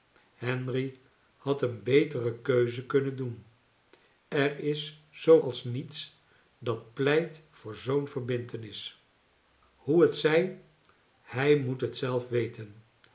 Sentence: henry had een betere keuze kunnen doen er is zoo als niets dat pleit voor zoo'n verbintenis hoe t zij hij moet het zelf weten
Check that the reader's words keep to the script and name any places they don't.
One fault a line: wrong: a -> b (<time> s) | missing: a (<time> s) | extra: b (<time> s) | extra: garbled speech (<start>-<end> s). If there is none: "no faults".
no faults